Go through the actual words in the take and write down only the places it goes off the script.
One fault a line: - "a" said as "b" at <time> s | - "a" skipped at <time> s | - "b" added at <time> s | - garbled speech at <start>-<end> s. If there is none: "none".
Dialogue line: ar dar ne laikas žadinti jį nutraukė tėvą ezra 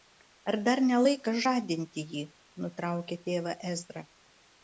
none